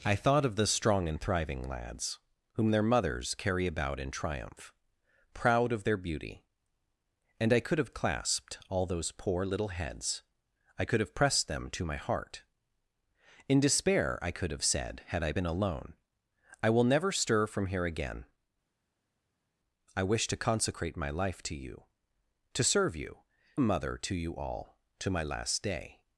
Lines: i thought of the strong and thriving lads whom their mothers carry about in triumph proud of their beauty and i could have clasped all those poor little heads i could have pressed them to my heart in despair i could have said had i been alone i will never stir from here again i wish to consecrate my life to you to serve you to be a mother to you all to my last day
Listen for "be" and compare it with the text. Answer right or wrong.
wrong